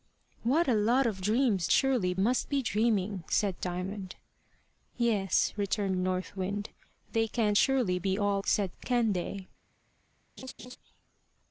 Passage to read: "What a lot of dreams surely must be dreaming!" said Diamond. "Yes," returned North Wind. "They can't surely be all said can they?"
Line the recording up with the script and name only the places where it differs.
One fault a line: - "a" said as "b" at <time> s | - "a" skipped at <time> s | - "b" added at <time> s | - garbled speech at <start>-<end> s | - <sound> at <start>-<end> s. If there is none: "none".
- laugh at 10.4-10.8 s